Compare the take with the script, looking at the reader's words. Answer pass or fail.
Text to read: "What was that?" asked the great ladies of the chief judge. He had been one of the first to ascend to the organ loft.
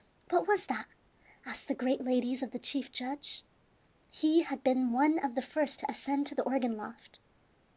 pass